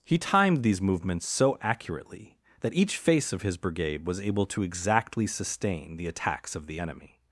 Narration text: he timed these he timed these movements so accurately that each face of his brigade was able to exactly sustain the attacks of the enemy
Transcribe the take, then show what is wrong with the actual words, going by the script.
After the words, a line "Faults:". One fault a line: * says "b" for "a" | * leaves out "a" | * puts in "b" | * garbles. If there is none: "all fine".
he timed these movements so accurately that each face of his brigade was able to exactly sustain the attacks of the enemy
Faults:
* leaves out "he timed these"